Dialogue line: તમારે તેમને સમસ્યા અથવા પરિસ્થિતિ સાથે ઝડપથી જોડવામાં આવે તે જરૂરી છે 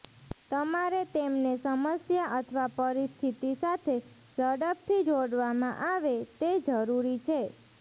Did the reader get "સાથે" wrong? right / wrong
right